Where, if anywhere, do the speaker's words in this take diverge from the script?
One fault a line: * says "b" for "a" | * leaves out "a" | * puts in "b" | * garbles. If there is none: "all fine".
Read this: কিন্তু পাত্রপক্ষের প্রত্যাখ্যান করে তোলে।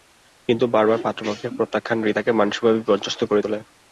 * puts in "বারবার"
* puts in "রিতাকে মানসিকভাবে বিপর্যস্ত"